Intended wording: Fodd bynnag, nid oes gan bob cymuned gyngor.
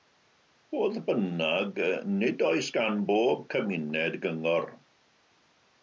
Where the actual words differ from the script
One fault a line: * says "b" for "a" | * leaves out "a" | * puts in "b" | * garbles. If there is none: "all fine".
all fine